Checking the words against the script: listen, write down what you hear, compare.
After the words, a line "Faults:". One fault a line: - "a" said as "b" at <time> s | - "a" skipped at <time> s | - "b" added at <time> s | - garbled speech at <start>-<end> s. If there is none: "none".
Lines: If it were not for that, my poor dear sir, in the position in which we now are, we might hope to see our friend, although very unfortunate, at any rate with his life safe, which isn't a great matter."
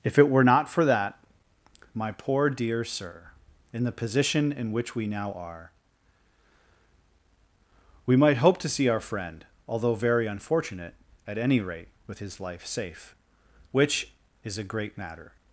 If it were not for that, my poor dear sir, in the position in which we now are, we might hope to see our friend, although very unfortunate, at any rate with his life safe, which is a great matter."
Faults:
- "isn't" said as "is" at 14.4 s